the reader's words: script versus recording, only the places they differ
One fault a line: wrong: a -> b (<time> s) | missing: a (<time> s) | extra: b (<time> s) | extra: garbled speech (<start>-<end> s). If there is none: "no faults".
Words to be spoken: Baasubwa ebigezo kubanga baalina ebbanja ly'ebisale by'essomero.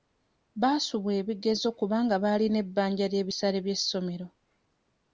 no faults